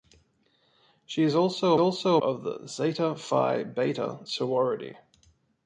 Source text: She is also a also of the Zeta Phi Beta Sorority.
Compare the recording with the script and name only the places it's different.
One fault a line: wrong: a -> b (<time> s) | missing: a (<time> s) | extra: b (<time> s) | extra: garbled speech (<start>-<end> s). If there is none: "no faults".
no faults